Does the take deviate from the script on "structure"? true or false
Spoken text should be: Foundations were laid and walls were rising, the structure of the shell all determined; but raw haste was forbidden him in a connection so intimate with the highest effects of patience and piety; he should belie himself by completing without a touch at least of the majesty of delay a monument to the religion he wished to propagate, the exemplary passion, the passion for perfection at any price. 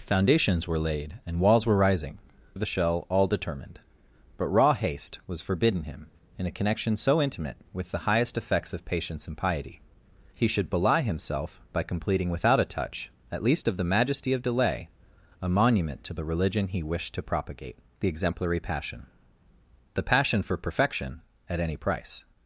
true